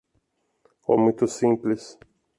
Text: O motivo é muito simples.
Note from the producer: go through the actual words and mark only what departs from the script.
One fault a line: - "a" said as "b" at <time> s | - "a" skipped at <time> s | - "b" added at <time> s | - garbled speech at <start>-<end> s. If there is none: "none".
- "motivo" skipped at 1.0 s